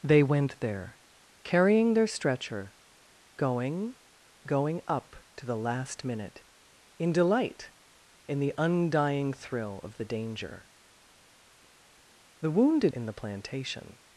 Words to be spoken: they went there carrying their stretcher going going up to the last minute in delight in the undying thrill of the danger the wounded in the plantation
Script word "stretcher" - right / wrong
right